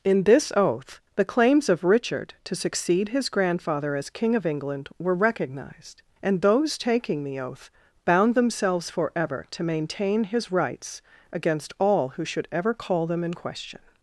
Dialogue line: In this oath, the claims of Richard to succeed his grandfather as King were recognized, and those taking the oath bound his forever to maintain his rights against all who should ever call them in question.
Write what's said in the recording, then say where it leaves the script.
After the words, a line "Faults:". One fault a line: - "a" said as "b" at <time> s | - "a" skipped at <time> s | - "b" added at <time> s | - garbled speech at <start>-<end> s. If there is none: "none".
In this oath, the claims of Richard to succeed his grandfather as King of England were recognized, and those taking the oath bound themselves forever to maintain his rights against all who should ever call them in question.
Faults:
- "of England" added at 4.3 s
- "his" said as "themselves" at 8.3 s